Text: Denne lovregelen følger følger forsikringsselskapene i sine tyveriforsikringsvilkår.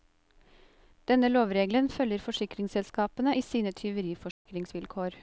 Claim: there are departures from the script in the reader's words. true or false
true